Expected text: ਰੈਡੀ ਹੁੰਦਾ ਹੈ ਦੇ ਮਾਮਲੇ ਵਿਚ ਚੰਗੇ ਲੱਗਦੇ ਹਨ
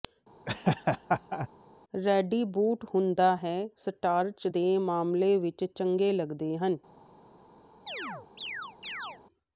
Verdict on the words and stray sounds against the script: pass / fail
fail